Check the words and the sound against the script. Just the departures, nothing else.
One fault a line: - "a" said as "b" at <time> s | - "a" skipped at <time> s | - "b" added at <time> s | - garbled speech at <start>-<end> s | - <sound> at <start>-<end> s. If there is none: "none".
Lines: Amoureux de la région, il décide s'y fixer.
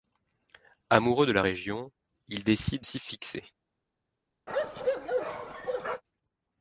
- bark at 4.5-6.0 s